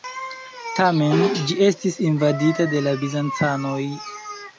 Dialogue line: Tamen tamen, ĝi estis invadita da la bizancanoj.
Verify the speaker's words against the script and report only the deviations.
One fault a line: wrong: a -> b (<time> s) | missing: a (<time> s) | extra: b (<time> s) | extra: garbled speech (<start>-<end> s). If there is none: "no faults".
missing: tamen (1.2 s)
wrong: da -> de (2.7 s)